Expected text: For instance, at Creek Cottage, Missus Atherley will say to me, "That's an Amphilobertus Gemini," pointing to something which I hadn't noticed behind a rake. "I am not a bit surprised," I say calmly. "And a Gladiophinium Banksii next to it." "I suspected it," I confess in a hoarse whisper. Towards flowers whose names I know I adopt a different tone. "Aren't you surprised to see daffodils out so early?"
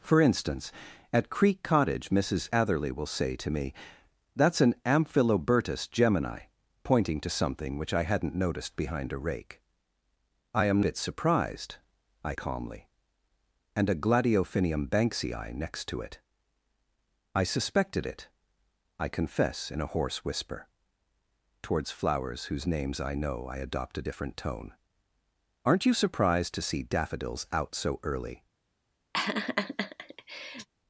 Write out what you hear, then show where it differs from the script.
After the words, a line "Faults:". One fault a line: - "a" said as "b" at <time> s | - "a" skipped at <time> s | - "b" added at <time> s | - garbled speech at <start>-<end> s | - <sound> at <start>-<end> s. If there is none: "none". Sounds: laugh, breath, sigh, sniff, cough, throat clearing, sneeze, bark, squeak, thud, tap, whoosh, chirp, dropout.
For instance, at Creek Cottage, Missus Atherley will say to me, "That's an Amphilobertus Gemini," pointing to something which I hadn't noticed behind a rake. "I am bit surprised," I calmly. "And a Gladiophinium Banksii next to it." "I suspected it," I confess in a hoarse whisper. Towards flowers whose names I know I adopt a different tone. "Aren't you surprised to see daffodils out so early?"
Faults:
- "not a" skipped at 10.8 s
- "say" skipped at 12.3 s
- laugh at 29.1-30.7 s